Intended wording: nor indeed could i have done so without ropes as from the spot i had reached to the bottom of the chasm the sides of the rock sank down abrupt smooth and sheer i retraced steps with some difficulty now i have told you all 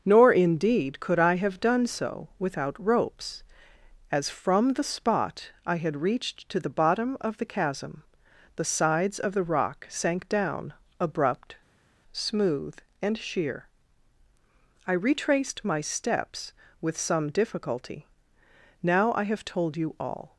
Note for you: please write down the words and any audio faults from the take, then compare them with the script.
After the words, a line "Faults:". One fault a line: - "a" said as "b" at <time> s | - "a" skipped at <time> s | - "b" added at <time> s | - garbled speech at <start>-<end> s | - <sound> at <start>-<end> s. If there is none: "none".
nor indeed could i have done so without ropes as from the spot i had reached to the bottom of the chasm the sides of the rock sank down abrupt smooth and sheer i retraced my steps with some difficulty now i have told you all
Faults:
- "my" added at 15.6 s